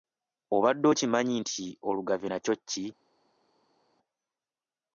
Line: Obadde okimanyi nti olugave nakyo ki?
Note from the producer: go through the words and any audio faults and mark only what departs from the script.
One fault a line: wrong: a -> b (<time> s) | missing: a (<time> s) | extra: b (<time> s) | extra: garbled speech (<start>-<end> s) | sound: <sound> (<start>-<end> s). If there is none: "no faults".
no faults